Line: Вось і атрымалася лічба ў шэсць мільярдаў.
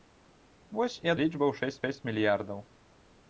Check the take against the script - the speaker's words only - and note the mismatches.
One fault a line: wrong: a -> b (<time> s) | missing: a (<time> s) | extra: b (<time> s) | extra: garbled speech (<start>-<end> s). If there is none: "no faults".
missing: атрымалася (1.1 s)
extra: шэсць (1.8 s)